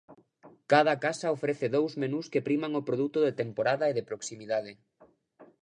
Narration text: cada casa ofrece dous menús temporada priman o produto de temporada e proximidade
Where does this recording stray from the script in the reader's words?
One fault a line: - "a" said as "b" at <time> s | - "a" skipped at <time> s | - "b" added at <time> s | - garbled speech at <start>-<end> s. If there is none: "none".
- "temporada" said as "que" at 2.3 s
- "de" added at 4.0 s